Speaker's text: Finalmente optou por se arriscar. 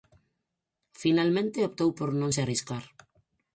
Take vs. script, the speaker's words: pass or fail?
fail